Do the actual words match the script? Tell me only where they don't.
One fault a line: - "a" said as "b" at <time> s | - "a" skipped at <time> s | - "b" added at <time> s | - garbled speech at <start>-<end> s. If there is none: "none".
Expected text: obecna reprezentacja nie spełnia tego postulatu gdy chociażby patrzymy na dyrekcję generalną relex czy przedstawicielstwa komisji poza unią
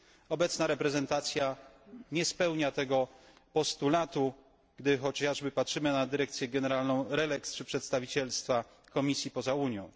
none